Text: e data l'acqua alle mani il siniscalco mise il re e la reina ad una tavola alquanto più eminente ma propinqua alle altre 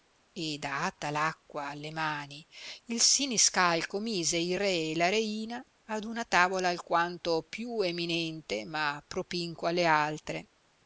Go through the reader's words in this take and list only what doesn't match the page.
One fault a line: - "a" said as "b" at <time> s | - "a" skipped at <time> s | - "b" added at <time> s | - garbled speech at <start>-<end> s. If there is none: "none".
none